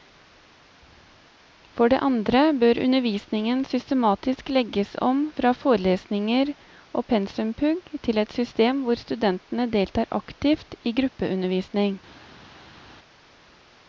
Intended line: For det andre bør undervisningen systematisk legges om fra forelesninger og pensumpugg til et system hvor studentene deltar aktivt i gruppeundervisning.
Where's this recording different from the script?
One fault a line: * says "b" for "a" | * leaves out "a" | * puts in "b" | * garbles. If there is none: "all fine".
all fine